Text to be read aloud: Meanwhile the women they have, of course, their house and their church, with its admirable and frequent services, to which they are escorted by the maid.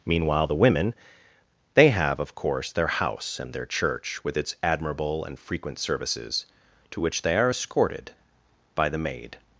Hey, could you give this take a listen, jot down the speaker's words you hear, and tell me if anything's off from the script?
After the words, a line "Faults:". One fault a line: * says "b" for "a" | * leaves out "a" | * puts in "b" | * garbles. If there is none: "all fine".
Meanwhile the women they have, of course, their house and their church, with its admirable and frequent services, to which they are escorted by the maid.
Faults:
all fine